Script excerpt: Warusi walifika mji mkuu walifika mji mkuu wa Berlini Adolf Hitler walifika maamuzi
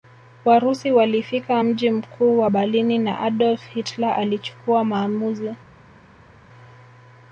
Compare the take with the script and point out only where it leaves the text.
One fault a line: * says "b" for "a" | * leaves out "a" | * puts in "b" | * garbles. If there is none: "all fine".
* leaves out "walifika mji mkuu"
* puts in "na"
* says "alichukua" for "walifika"